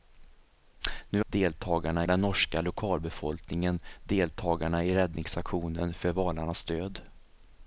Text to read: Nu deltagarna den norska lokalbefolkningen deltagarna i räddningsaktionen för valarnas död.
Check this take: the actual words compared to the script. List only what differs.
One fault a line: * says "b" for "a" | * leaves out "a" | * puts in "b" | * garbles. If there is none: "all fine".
all fine